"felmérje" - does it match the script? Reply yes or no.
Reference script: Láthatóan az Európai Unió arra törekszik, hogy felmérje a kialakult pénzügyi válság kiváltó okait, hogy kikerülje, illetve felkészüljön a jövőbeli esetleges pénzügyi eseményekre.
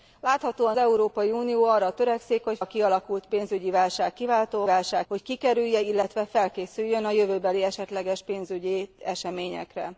no